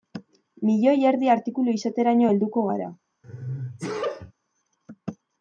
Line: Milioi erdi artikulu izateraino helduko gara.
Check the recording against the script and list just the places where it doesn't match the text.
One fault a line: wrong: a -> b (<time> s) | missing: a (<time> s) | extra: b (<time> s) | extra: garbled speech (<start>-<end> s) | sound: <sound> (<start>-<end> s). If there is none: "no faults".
sound: sneeze (3.2-4.3 s)